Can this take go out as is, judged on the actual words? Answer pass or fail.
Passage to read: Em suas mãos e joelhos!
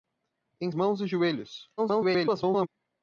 fail